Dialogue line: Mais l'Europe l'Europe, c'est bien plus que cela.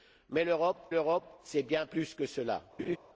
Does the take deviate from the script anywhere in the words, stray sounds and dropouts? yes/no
yes